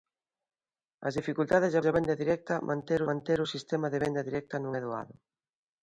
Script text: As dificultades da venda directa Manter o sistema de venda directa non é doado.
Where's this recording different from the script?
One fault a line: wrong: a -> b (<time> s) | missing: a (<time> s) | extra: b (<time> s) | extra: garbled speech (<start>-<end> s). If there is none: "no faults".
extra: da (1.8 s)
extra: Manter (3.1 s)